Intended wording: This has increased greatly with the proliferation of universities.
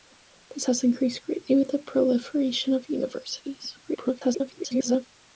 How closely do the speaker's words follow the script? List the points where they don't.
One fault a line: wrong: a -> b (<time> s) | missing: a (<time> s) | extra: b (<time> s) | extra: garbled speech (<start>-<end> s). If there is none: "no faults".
extra: garbled speech (3.8-5.1 s)